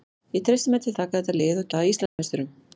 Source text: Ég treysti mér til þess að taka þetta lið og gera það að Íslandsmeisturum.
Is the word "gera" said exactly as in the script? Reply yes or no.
no